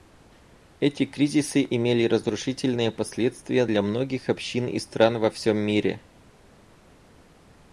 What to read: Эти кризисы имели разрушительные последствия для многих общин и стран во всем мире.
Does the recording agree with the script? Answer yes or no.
yes